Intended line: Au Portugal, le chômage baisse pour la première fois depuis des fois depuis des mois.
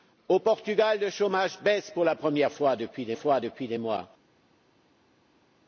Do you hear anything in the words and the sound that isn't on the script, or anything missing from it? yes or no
no